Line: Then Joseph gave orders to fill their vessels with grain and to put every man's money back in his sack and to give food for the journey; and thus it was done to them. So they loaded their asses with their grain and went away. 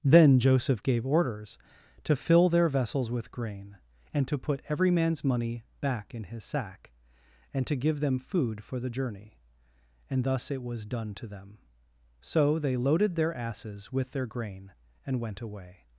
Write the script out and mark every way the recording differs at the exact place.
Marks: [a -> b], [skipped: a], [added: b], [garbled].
Then Joseph gave orders to fill their vessels with grain and to put every man's money back in his sack and to give [added: them] food for the journey; and thus it was done to them. So they loaded their asses with their grain and went away.